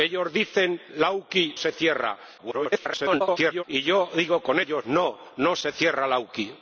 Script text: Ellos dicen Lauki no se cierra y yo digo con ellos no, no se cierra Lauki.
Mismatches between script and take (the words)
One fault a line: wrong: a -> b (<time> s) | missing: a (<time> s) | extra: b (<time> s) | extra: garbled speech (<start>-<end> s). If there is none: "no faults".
missing: no (1.6 s)
extra: garbled speech (2.4-3.6 s)